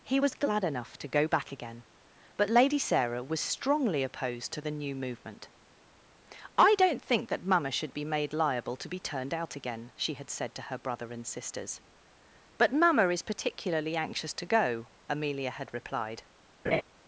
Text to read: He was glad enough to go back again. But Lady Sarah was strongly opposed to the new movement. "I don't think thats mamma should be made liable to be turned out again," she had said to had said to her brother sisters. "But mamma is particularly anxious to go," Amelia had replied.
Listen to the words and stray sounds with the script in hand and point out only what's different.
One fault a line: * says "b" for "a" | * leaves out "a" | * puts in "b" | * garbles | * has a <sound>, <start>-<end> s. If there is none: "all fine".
* says "that" for "thats"
* leaves out "had said to"
* puts in "and"
* has a laugh, 16.6-16.8 s